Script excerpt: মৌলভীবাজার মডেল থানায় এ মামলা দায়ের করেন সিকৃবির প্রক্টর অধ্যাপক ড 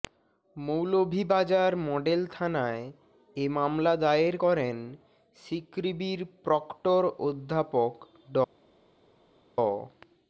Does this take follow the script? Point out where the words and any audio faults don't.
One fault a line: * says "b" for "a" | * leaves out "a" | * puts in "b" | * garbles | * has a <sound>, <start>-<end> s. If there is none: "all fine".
all fine